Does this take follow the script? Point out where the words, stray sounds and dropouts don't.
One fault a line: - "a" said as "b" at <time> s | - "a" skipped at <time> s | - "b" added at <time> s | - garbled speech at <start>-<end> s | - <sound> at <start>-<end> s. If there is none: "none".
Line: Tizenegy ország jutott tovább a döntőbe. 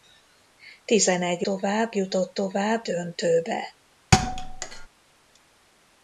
- "ország" said as "tovább" at 1.4 s
- "a" skipped at 2.8 s
- thud at 4.1-4.9 s